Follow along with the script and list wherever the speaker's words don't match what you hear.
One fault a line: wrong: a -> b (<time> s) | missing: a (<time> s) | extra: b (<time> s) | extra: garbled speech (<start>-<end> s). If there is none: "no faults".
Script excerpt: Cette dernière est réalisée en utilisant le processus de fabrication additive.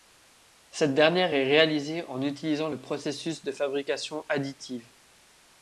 no faults